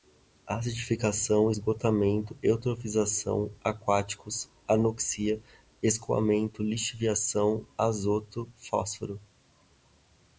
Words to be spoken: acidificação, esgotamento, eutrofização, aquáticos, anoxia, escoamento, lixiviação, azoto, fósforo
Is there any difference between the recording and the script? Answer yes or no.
no